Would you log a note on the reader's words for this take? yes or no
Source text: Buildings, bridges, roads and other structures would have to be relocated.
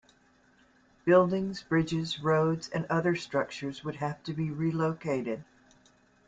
no